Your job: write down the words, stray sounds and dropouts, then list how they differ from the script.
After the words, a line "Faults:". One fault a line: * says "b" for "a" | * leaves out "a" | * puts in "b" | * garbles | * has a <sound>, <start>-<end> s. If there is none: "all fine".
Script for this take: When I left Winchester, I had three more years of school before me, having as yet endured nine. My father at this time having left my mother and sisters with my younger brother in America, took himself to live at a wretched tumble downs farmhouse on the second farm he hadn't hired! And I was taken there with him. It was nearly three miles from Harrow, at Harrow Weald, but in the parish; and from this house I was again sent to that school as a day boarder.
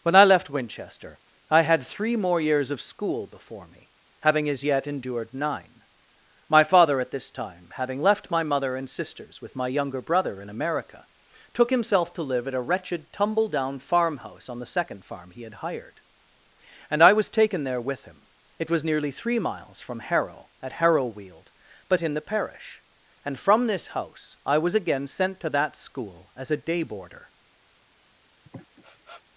When I left Winchester, I had three more years of school before me, having as yet endured nine. My father at this time having left my mother and sisters with my younger brother in America, took himself to live at a wretched tumble down farmhouse on the second farm he had hired! And I was taken there with him. It was nearly three miles from Harrow, at Harrow Weald, but in the parish; and from this house I was again sent to that school as a day boarder.
Faults:
* says "down" for "downs"
* says "had" for "hadn't"
* has a sniff, 28.4-29.2 s